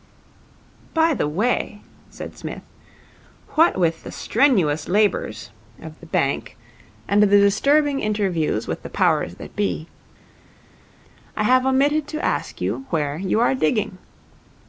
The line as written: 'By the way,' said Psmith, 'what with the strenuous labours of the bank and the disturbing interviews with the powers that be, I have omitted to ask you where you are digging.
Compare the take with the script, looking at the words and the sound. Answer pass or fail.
pass